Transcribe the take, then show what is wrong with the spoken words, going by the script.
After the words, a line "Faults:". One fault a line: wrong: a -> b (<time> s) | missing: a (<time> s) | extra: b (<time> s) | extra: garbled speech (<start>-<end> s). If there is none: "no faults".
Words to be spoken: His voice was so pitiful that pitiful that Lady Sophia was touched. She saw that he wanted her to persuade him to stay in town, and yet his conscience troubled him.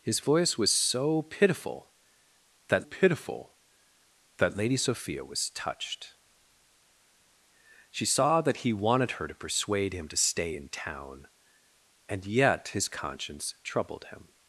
His voice was so pitiful that pitiful that Lady Sophia was touched. She saw that he wanted her to persuade him to stay in town, and yet his conscience troubled him.
Faults:
no faults